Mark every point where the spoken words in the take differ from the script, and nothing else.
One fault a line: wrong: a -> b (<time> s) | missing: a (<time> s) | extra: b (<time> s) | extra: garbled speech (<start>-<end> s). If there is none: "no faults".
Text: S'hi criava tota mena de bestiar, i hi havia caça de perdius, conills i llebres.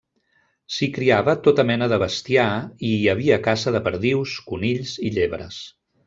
no faults